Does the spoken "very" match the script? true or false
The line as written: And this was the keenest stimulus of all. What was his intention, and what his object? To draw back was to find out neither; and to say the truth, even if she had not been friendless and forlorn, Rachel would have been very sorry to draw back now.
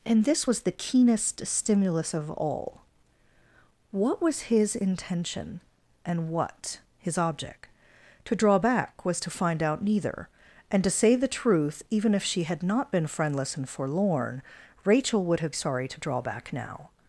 false